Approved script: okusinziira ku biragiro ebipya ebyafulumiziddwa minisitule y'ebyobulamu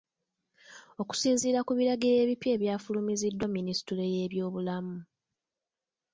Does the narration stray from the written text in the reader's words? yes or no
no